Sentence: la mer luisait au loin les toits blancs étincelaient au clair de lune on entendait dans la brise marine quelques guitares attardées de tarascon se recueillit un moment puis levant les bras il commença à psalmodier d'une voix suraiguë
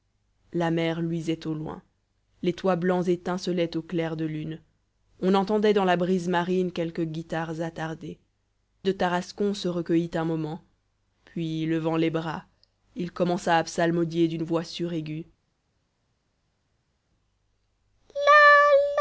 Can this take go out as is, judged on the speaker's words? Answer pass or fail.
pass